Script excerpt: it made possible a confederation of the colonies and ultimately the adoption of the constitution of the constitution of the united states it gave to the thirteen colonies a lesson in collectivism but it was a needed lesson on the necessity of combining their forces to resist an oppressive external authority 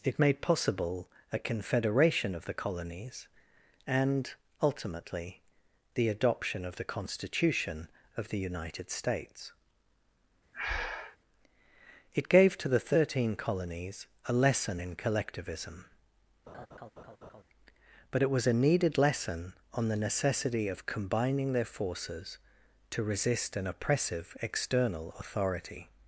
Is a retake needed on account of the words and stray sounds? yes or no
yes